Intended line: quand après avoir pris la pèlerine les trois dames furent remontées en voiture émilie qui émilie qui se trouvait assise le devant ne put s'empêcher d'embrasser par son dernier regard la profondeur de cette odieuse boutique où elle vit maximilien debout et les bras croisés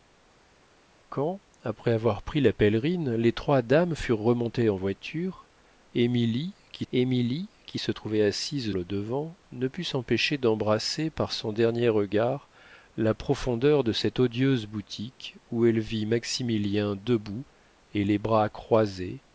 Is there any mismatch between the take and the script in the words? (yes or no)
no